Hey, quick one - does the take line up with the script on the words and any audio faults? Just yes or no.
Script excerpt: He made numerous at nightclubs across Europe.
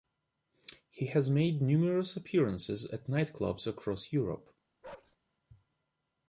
no